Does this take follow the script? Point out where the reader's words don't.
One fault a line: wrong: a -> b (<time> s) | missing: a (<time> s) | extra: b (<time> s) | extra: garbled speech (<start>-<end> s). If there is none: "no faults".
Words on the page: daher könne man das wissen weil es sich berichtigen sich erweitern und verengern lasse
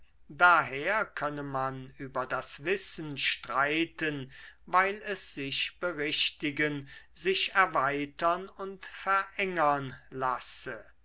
extra: über (2.0 s)
extra: streiten (3.2 s)